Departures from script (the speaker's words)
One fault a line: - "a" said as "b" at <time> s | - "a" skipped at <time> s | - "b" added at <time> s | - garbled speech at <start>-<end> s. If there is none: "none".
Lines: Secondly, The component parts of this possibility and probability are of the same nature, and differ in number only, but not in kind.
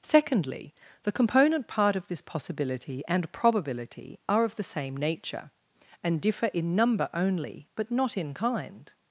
- "parts" said as "part" at 1.7 s